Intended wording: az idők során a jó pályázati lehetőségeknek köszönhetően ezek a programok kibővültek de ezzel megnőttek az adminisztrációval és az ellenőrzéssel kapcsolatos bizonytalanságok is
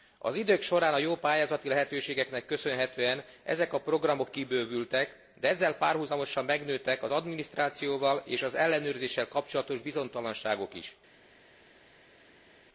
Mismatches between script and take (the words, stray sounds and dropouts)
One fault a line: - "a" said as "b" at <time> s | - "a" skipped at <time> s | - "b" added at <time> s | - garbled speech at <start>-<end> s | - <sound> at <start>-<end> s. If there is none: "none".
- "párhuzamosan" added at 5.8 s